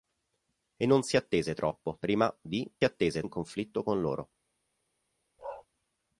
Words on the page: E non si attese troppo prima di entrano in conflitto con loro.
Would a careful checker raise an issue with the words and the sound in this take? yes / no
yes